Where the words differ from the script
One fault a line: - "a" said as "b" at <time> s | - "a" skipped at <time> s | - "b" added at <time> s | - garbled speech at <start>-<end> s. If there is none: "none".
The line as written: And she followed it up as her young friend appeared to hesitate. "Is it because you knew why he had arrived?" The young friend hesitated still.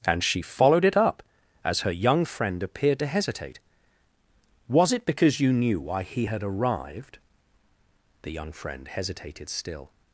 - "Is" said as "Was" at 4.7 s